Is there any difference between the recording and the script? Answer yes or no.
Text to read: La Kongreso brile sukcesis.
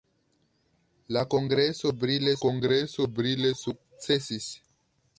yes